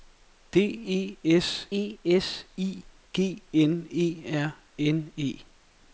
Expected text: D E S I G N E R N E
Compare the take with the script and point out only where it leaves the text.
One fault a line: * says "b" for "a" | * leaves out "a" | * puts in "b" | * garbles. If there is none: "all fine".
* puts in "E S"